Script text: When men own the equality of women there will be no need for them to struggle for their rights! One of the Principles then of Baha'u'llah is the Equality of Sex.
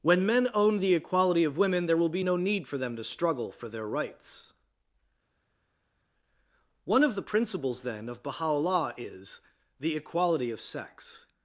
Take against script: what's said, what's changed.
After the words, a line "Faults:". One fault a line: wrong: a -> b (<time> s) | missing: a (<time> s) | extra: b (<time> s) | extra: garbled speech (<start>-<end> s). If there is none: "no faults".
When men own the equality of women there will be no need for them to struggle for their rights! One of the Principles then of Baha'u'llah is the Equality of Sex.
Faults:
no faults